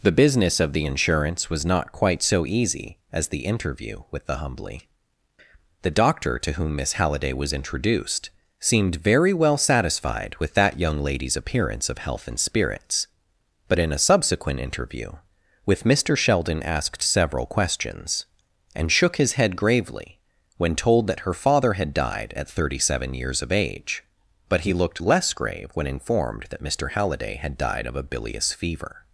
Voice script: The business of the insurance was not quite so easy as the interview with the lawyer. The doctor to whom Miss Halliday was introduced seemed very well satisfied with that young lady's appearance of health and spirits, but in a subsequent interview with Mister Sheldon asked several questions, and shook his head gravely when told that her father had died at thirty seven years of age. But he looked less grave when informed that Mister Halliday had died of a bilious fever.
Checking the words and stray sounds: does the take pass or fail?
fail